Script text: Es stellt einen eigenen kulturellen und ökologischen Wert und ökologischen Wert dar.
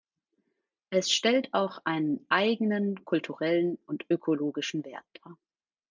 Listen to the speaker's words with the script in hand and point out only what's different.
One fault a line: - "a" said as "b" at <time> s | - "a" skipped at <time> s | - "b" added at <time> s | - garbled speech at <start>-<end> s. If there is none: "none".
- "auch" added at 1.5 s
- "und ökologischen Wert" skipped at 5.0 s